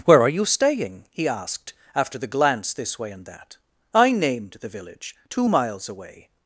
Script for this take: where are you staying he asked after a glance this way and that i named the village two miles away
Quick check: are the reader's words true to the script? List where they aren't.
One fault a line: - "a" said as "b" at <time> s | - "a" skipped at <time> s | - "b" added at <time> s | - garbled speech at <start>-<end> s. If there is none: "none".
- "a" said as "the" at 2.2 s